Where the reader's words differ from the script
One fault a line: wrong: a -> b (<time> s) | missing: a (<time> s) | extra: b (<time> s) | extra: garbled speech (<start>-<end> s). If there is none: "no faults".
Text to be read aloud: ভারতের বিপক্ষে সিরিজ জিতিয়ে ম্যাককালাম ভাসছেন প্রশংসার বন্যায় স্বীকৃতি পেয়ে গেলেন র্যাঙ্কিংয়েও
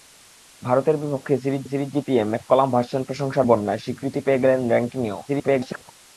extra: সিরিজ (1.6 s)
extra: garbled speech (5.3-5.9 s)